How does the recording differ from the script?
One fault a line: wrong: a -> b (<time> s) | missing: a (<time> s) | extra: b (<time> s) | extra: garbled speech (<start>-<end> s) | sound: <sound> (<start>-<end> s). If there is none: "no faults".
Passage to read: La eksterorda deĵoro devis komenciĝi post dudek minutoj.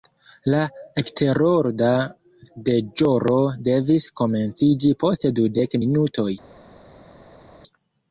no faults